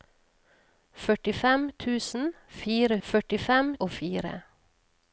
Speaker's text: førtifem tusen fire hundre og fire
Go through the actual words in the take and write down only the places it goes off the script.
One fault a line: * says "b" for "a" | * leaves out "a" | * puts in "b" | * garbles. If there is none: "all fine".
* says "førtifem" for "hundre"